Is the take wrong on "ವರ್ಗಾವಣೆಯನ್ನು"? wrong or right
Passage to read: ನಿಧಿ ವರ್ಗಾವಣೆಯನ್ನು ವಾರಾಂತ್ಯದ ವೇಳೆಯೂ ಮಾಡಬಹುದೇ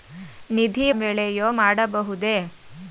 wrong